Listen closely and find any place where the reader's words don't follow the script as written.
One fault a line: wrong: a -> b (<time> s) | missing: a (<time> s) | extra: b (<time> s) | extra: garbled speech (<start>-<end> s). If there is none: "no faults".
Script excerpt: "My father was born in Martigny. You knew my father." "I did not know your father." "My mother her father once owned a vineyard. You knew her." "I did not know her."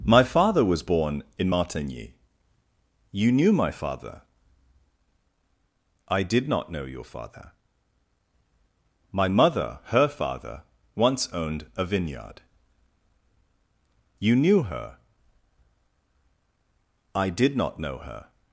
no faults